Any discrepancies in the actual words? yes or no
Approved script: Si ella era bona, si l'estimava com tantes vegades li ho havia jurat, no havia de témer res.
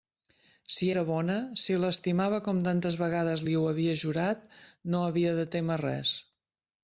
yes